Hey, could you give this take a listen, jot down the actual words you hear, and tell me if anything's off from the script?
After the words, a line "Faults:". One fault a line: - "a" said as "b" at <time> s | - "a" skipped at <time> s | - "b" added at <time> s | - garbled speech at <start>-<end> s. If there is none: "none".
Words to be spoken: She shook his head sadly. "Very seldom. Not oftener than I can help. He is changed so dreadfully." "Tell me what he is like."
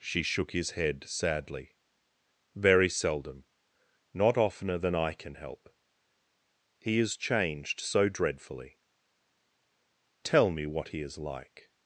She shook his head sadly. "Very seldom. Not oftener than I can help. He is changed so dreadfully." "Tell me what he is like."
Faults:
none